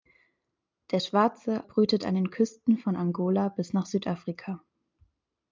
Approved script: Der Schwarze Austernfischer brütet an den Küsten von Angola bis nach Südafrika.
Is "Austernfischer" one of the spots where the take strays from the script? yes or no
yes